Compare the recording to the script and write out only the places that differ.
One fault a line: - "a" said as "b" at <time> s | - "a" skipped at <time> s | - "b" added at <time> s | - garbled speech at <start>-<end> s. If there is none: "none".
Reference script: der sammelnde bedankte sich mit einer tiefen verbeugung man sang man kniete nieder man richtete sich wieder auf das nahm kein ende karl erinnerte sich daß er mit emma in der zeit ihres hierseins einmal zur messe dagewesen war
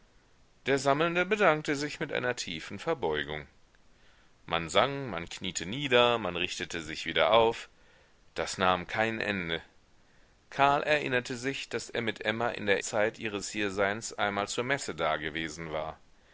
none